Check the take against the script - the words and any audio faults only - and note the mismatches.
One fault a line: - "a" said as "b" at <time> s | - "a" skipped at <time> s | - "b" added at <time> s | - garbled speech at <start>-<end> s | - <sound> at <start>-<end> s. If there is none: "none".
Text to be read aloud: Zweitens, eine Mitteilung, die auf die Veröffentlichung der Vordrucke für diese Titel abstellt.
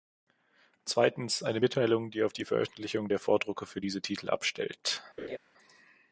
- laugh at 5.2-5.4 s